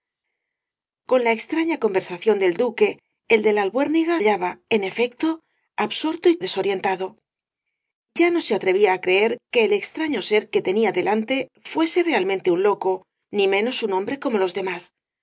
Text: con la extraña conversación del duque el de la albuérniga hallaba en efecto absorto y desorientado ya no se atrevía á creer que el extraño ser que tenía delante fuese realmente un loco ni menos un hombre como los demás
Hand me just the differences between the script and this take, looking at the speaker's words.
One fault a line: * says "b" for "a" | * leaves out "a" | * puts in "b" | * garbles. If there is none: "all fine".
all fine